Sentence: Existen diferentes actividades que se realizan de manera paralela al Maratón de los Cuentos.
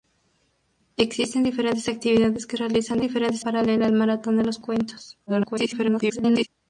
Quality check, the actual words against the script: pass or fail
fail